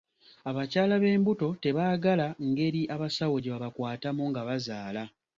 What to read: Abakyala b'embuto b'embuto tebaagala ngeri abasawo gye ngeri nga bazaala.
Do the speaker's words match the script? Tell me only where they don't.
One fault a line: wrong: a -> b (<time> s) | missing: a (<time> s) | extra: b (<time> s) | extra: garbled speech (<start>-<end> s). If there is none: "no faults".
missing: b'embuto (1.5 s)
wrong: ngeri -> babakwatamu (3.5 s)